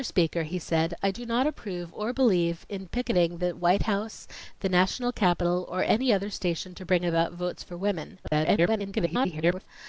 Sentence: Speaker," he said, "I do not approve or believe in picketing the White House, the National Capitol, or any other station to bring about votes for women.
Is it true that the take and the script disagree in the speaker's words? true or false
true